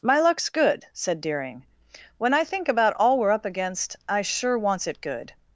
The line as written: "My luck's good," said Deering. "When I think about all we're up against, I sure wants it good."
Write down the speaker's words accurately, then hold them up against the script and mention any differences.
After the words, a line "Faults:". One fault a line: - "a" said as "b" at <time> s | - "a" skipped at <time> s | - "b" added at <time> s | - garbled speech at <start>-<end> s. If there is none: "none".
"My luck's good," said Deering. "When I think about all we're up against, I sure wants it good."
Faults:
none